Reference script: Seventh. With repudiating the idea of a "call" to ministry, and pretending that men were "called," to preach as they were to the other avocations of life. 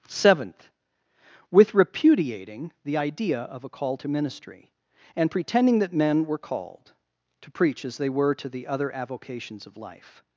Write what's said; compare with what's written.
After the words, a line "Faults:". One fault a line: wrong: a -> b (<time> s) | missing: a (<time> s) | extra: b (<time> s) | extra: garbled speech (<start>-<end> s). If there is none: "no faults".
Seventh. With repudiating the idea of a "call" to ministry, and pretending that men were "called," to preach as they were to the other avocations of life.
Faults:
no faults